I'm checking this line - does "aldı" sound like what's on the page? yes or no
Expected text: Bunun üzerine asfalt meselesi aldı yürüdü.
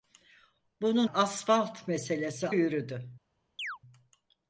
no